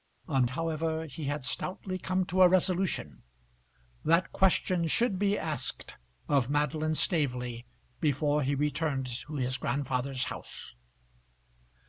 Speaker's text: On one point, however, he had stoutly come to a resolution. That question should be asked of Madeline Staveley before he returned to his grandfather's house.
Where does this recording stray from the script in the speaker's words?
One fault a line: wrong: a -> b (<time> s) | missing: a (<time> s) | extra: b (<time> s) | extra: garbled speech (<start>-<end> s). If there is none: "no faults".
missing: one point (0.5 s)